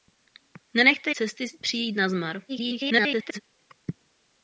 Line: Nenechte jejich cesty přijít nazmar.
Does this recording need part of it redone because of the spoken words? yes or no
yes